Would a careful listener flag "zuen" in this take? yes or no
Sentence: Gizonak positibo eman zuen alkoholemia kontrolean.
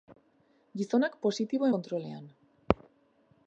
yes